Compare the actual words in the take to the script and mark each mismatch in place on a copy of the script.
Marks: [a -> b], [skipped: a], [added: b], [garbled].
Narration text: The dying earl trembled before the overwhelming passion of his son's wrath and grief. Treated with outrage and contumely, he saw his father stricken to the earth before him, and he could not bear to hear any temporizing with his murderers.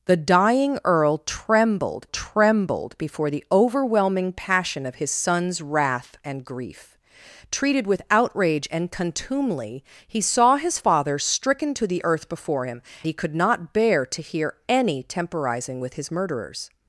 The dying earl trembled [added: trembled] before the overwhelming passion of his son's wrath and grief. Treated with outrage and contumely, he saw his father stricken to the earth before him, [skipped: and] he could not bear to hear any temporizing with his murderers.